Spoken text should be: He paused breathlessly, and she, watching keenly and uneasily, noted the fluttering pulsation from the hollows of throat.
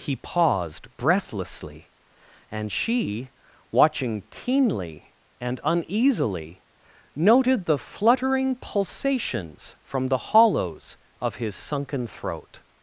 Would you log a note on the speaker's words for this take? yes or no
yes